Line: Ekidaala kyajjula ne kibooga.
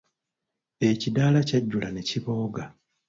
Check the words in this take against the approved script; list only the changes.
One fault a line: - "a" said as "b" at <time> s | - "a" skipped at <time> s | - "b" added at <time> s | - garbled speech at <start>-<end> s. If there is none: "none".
none